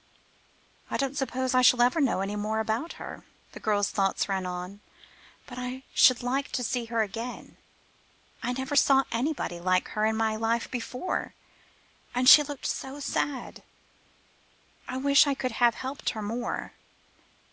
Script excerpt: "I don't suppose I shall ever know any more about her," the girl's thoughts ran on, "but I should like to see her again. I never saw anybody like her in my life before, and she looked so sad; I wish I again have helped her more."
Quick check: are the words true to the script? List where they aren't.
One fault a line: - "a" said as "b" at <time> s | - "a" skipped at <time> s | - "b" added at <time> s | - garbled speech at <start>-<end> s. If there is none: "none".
- "again" said as "could" at 15.3 s